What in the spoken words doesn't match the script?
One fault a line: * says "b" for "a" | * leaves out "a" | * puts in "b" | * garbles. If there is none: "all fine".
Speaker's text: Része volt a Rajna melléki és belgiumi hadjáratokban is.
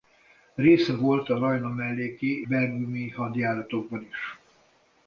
* leaves out "és"